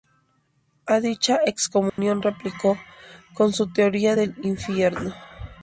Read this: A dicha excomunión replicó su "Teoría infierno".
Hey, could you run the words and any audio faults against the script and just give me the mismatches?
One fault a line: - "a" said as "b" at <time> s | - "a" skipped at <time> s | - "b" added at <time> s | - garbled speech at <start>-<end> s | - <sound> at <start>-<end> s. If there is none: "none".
- dropout at 1.9-2.0 s
- "con" added at 3.4 s
- "del" added at 4.1 s